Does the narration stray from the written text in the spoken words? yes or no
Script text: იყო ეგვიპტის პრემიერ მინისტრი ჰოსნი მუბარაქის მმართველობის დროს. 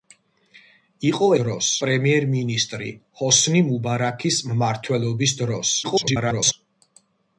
yes